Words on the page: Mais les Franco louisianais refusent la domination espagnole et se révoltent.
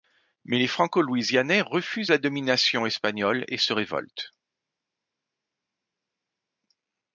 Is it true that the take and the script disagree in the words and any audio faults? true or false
false